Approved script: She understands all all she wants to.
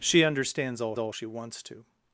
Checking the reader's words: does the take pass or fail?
pass